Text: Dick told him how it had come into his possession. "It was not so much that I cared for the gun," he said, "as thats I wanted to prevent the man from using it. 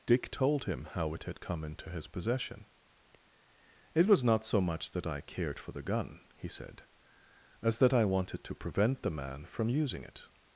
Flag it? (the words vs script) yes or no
yes